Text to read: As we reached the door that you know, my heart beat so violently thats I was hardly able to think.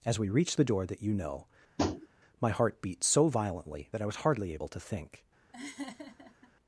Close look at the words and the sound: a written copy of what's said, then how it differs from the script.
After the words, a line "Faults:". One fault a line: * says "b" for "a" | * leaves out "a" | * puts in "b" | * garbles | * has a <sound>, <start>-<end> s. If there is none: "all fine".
As we reached the door that you know, my heart beat so violently that I was hardly able to think.
Faults:
* has a tap, 1.8-2.1 s
* says "that" for "thats"
* has a laugh, 5.5-6.5 s